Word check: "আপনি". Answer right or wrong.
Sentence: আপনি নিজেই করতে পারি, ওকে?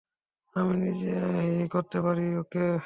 wrong